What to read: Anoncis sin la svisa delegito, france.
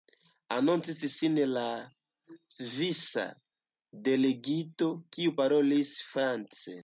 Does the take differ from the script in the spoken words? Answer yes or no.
yes